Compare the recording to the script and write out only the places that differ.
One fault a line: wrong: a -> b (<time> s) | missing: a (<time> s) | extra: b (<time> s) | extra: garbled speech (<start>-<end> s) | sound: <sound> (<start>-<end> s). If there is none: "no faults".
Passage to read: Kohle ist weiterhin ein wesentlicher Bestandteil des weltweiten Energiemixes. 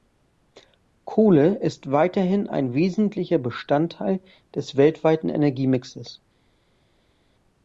no faults